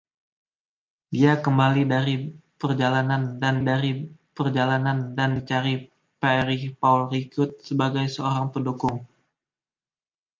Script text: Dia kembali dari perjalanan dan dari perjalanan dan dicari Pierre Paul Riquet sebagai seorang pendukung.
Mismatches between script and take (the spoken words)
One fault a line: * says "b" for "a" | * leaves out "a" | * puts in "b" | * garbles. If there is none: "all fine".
all fine